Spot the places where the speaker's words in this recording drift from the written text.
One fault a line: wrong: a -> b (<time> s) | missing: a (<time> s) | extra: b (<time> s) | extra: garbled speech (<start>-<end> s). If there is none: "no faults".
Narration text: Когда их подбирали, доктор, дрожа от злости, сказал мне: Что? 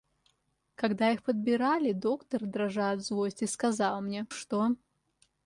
no faults